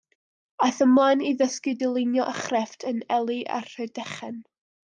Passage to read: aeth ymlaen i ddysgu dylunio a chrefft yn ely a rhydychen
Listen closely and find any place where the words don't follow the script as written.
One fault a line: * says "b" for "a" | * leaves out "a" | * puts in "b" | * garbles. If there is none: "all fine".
all fine